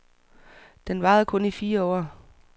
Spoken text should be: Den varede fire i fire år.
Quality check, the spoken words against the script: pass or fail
fail